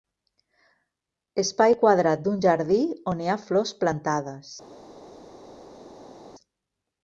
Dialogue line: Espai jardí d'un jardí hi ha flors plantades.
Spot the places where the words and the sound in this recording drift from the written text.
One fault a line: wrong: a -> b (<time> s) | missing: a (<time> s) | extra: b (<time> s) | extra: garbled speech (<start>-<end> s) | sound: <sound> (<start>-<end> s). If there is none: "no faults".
wrong: jardí -> quadrat (1.8 s)
extra: on (3.1 s)